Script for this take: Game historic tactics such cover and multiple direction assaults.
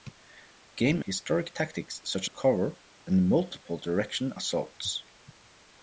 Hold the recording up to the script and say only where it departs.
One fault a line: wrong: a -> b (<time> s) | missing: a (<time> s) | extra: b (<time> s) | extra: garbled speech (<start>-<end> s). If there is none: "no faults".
no faults